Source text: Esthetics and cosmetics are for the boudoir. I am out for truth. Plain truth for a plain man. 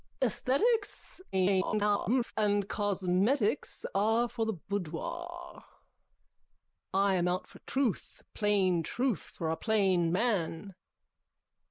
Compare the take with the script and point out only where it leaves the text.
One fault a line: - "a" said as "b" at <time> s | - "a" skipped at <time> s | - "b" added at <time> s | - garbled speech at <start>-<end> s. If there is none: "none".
- garbled speech at 1.3-2.3 s